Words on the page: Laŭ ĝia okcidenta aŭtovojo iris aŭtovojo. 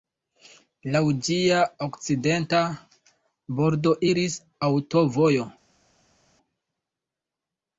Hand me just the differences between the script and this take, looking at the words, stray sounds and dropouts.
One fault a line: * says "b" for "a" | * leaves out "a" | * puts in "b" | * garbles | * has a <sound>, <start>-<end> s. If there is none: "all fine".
* says "bordo" for "aŭtovojo"